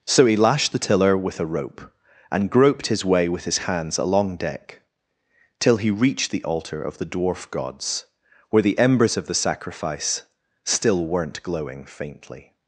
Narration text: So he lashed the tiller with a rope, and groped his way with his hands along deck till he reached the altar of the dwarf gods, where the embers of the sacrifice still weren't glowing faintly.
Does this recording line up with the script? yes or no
yes